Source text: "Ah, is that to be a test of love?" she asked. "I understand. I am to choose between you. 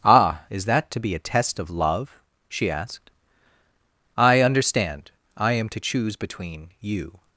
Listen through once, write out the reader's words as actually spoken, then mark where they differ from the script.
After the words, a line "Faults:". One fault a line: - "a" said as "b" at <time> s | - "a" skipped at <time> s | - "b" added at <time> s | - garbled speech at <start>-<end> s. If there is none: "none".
"Ah, is that to be a test of love?" she asked. "I understand. I am to choose between you.
Faults:
none